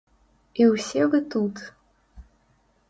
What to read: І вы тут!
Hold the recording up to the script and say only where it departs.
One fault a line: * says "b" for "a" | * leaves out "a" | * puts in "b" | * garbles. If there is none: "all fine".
* puts in "ўсе"